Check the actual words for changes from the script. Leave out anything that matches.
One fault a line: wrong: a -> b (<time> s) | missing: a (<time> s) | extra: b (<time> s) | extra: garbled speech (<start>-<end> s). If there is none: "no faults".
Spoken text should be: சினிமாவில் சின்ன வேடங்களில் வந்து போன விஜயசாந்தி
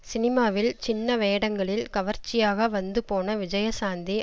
extra: கவர்ச்சியாக (1.9 s)